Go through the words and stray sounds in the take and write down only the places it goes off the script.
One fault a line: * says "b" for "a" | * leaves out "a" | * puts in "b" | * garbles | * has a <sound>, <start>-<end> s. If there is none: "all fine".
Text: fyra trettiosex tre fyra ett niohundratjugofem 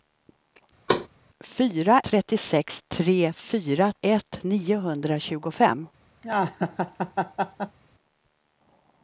* has a thud, 0.9-1.1 s
* has a laugh, 6.2-7.8 s